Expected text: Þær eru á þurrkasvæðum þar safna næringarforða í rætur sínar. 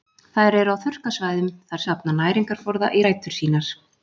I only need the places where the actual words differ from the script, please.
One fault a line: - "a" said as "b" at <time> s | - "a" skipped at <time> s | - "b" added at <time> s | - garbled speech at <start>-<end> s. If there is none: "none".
none